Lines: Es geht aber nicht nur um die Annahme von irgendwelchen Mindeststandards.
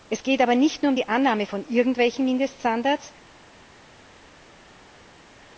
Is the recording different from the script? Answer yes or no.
no